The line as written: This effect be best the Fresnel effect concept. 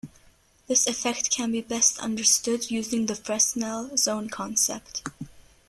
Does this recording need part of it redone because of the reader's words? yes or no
yes